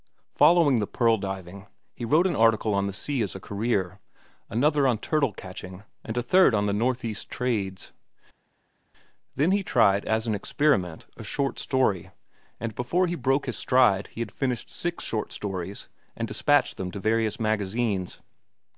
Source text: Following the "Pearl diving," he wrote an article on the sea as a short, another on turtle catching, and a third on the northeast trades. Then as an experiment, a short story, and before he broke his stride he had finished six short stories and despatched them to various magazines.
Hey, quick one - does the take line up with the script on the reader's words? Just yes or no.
no